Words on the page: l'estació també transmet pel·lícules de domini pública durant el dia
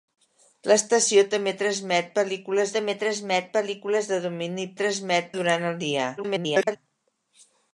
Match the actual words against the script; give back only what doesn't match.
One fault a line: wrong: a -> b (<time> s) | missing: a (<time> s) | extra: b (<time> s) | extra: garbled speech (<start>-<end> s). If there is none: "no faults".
extra: també transmet pel·lícules (2.8 s)
wrong: pública -> transmet (4.8 s)
extra: garbled speech (6.2-6.8 s)